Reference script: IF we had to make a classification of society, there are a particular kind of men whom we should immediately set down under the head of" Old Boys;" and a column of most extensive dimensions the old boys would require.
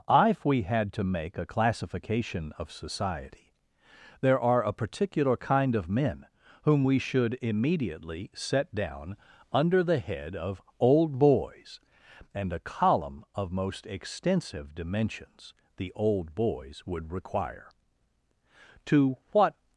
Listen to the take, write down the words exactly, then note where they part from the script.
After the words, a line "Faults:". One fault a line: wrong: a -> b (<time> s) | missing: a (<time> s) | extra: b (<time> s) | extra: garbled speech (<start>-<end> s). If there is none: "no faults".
IF we had to make a classification of society, there are a particular kind of men whom we should immediately set down under the head of" Old Boys;" and a column of most extensive dimensions the old boys would require. To what
Faults:
extra: To what (18.9 s)